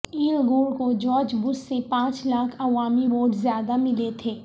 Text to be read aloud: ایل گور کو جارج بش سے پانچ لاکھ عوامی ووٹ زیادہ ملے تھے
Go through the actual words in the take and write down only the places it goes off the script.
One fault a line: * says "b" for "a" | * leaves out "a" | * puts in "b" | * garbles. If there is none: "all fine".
all fine